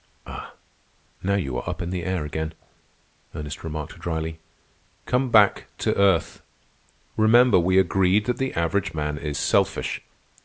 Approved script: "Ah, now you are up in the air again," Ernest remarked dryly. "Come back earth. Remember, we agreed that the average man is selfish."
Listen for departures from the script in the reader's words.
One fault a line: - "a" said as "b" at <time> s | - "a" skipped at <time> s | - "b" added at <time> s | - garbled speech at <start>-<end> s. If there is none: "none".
- "to" added at 5.8 s